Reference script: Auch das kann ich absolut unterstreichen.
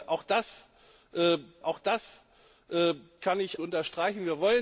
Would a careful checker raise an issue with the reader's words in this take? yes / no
yes